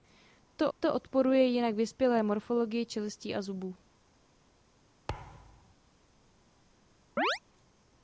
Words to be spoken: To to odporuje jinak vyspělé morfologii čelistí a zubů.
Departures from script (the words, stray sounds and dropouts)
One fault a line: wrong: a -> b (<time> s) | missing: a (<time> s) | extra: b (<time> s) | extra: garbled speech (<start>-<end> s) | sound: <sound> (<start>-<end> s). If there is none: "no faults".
sound: thud (5.1-5.7 s)
sound: chirp (7.2-7.4 s)